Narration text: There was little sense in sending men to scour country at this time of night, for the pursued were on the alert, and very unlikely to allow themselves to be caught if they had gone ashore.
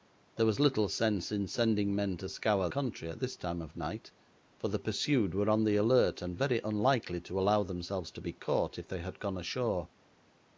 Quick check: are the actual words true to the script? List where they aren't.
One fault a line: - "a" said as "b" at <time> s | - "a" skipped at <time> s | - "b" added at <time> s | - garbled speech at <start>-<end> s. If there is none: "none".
none